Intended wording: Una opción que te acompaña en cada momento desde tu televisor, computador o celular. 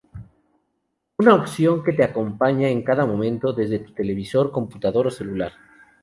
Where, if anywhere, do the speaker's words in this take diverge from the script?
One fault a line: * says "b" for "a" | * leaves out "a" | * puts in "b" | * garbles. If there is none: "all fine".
all fine